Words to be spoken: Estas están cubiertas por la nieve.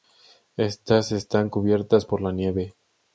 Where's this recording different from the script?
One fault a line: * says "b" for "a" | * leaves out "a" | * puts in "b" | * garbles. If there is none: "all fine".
all fine